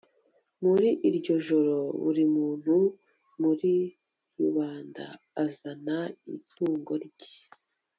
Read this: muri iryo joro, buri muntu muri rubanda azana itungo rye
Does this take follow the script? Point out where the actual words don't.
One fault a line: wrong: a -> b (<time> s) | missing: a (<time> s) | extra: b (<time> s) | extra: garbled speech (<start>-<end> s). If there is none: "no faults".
no faults